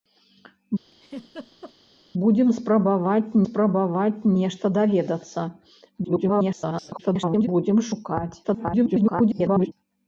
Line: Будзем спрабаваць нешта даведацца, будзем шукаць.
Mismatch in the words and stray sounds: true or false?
true